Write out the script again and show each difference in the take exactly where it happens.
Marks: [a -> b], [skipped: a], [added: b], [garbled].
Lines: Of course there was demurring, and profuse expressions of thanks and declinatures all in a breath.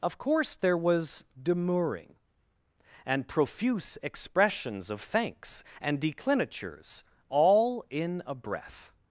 Of course there was demurring, and profuse expressions of thanks and declinatures all in a breath.